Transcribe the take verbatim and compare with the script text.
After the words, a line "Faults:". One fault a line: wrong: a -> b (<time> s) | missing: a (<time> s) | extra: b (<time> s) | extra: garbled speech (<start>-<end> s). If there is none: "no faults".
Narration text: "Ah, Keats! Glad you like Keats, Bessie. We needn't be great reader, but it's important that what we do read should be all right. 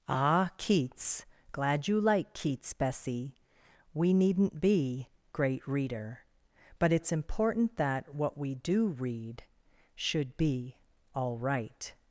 "Ah, Keats! Glad you like Keats, Bessie. We needn't be great reader, but it's important that what we do read should be all right.
Faults:
no faults